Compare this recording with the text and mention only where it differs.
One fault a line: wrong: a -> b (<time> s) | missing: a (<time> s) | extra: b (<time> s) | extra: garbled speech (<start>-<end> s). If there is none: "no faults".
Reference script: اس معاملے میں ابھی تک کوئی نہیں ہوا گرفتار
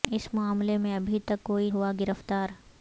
missing: نہیں (1.7 s)